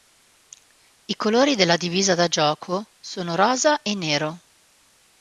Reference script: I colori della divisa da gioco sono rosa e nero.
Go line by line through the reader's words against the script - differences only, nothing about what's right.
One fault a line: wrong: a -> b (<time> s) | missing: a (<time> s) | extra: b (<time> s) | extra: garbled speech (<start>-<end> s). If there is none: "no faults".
no faults